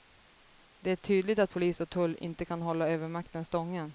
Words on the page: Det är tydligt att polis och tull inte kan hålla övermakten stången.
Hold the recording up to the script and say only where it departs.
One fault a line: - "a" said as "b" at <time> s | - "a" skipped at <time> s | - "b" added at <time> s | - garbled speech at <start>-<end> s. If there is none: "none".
none